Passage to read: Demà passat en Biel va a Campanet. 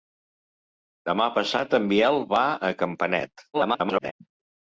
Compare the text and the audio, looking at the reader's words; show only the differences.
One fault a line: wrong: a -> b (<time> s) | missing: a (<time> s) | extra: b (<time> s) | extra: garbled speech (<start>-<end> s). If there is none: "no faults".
extra: garbled speech (3.5-4.1 s)